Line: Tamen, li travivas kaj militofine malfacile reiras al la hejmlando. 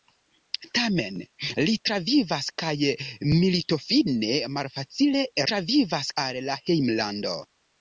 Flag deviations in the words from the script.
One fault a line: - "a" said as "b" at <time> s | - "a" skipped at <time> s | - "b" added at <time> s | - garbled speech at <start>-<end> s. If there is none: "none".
- "reiras" said as "travivas" at 5.5 s